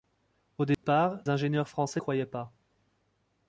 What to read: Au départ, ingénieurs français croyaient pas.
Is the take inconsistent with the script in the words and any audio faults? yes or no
yes